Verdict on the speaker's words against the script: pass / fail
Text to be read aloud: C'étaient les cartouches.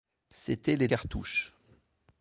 pass